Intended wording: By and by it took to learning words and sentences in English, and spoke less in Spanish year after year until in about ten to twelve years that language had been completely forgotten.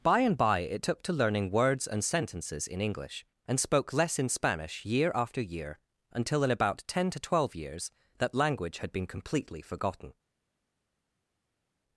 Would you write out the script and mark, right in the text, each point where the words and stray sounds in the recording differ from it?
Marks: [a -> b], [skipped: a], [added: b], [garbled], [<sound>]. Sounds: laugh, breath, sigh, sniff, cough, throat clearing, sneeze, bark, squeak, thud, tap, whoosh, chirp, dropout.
By and by it took to learning words and sentences in English, and spoke less in Spanish year after year until in about ten to twelve years that language had been completely forgotten.